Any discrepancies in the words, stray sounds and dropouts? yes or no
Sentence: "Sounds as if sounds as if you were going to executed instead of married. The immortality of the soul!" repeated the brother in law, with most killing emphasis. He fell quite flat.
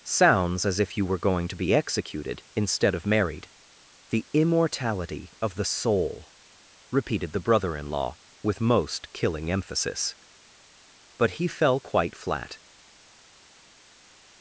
yes